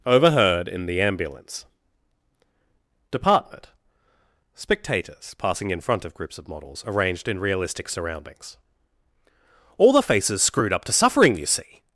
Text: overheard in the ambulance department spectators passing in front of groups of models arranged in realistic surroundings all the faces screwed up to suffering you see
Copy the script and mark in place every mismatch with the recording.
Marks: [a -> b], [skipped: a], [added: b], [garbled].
overheard in the ambulance department spectators passing in front of groups of models arranged in realistic surroundings all the faces screwed up to suffering you see